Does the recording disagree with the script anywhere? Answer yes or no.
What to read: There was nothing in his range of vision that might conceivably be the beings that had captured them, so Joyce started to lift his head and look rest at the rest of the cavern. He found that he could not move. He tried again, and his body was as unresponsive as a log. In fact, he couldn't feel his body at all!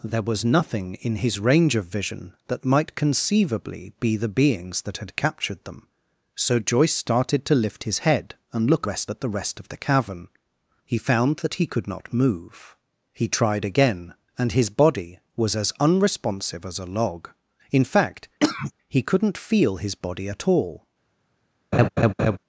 no